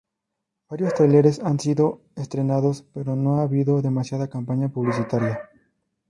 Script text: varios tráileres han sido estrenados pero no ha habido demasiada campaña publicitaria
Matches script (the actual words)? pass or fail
pass